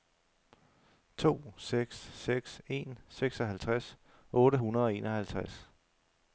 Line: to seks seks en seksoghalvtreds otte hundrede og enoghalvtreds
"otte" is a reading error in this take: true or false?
false